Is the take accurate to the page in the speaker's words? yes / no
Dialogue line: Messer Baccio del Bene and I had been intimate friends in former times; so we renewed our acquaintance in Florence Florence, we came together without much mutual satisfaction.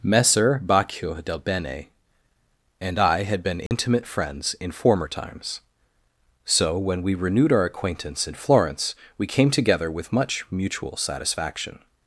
no